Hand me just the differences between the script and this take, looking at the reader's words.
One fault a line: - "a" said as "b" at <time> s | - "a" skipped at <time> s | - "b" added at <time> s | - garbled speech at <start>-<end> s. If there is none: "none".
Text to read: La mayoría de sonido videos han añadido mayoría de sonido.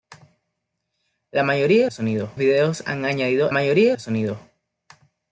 none